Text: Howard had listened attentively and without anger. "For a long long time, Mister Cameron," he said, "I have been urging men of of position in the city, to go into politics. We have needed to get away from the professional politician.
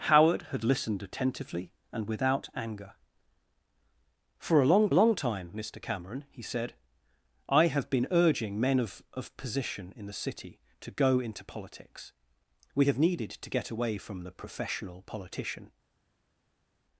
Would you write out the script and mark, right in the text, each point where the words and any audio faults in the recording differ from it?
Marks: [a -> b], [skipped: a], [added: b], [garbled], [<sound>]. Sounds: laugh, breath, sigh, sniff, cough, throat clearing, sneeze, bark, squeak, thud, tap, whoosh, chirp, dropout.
Howard had listened attentively and without anger. "For a long long time, Mister Cameron," he said, "I have been urging men of of position in the city, to go into politics. We have needed to get away from the professional politician.